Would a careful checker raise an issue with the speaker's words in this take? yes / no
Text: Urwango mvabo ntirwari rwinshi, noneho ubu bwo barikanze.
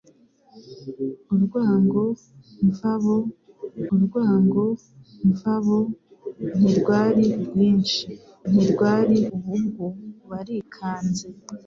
yes